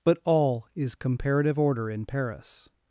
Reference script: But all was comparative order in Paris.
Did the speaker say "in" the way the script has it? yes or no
yes